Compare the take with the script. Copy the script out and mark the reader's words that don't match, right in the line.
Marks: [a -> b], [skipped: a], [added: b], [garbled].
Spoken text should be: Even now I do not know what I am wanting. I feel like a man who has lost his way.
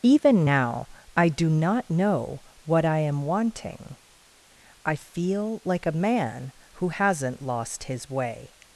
Even now I do not know what I am wanting. I feel like a man who [has -> hasn't] lost his way.